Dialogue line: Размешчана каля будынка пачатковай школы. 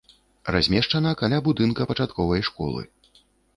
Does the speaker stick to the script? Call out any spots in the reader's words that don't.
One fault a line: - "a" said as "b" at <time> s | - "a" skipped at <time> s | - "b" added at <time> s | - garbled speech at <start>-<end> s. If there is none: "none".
none